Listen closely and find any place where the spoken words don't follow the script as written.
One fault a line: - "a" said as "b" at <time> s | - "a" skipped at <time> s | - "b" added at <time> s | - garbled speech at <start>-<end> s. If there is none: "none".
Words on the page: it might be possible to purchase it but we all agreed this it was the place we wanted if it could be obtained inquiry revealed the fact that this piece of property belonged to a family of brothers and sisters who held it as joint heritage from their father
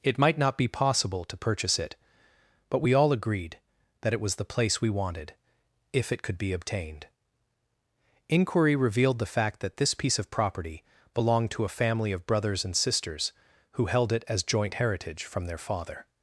- "not" added at 0.4 s
- "this" said as "that" at 4.0 s